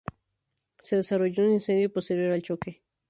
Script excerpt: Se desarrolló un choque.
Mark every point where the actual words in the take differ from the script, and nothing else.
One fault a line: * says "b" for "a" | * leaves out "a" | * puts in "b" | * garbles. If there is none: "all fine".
* puts in "incendio posterior al"